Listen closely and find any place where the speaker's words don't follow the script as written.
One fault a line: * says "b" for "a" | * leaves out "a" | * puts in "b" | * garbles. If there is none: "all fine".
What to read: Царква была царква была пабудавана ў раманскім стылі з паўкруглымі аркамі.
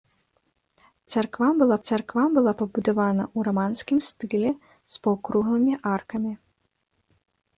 all fine